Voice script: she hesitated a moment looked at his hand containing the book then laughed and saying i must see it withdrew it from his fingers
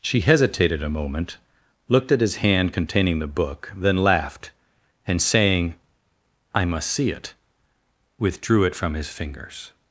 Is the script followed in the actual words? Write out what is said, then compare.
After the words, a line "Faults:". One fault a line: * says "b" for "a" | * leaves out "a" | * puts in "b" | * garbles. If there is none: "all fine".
she hesitated a moment looked at his hand containing the book then laughed and saying i must see it withdrew it from his fingers
Faults:
all fine